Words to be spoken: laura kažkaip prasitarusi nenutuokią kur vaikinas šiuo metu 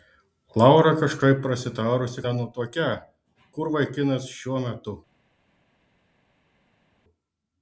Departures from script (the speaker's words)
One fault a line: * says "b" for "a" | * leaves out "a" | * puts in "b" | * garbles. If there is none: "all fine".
all fine